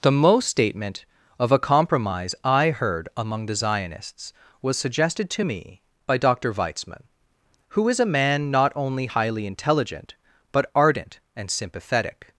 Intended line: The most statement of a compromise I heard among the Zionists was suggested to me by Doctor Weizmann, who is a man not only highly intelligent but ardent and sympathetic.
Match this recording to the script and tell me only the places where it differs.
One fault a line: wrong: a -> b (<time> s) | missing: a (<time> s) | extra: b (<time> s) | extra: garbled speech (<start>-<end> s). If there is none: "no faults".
no faults